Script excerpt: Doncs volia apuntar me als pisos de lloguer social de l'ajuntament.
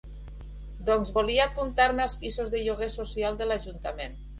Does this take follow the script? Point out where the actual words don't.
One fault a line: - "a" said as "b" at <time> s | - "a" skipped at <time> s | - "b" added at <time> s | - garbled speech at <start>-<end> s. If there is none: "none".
none